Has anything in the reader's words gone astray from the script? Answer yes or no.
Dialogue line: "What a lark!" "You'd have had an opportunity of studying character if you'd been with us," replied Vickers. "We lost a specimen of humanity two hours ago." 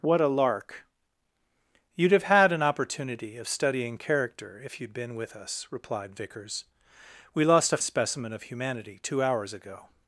no